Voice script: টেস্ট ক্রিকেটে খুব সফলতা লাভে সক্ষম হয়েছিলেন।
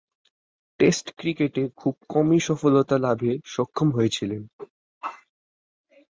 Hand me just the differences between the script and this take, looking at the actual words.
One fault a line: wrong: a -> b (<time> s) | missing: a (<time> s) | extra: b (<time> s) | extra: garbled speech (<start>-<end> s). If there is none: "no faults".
extra: কমই (2.1 s)